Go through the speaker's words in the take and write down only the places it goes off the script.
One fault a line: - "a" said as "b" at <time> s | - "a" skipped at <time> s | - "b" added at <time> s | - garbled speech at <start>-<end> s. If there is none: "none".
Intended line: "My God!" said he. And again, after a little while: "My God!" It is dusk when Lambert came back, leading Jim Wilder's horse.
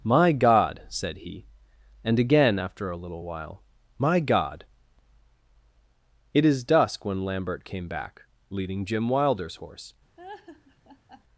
none